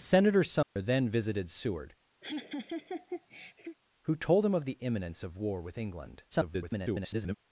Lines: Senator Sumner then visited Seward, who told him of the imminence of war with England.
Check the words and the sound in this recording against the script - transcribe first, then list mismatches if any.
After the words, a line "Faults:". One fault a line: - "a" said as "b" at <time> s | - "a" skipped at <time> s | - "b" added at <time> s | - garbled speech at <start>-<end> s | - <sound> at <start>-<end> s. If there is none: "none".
Senator Sumner then visited Seward, who told him of the imminence of war with England. [garbled]
Faults:
- dropout at 0.6-0.8 s
- laugh at 2.2-3.8 s
- garbled speech at 6.3-7.3 s